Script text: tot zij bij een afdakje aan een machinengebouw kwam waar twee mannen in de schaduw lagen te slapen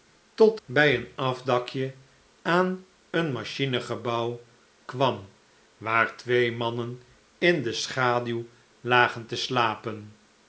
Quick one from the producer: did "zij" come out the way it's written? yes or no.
no